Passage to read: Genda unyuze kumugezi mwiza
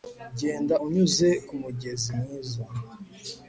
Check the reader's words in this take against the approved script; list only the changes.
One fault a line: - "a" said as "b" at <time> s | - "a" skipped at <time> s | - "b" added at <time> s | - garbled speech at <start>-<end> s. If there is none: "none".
none